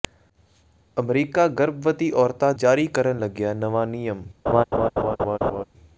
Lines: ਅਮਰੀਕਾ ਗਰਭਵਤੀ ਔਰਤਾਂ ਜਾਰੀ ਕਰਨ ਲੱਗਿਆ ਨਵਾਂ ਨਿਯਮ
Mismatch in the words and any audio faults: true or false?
true